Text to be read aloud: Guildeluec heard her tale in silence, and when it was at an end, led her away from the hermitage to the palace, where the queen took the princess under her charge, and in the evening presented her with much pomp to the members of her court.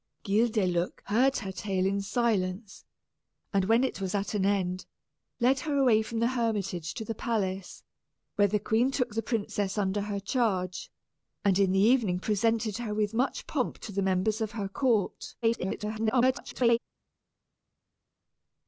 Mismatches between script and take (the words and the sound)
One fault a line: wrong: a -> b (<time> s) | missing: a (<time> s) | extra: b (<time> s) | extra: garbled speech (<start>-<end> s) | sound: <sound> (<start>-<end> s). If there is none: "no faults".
extra: garbled speech (15.4-16.8 s)